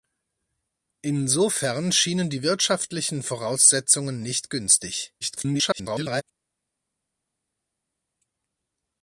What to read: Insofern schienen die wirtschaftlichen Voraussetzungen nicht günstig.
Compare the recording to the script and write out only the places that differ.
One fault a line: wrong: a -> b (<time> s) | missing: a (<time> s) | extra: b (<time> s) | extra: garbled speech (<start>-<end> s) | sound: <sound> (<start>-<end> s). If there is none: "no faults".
extra: garbled speech (5.2-6.2 s)